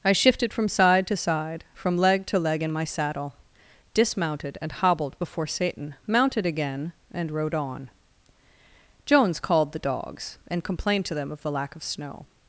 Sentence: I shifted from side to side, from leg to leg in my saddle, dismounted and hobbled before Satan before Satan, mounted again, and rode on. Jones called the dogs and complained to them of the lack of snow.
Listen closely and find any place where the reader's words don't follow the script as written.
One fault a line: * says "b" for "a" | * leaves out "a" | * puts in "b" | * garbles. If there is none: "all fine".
* leaves out "before Satan"